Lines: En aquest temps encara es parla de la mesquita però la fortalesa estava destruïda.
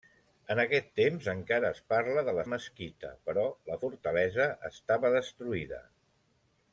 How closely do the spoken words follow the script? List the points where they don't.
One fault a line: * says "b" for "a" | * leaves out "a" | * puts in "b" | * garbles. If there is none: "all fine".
all fine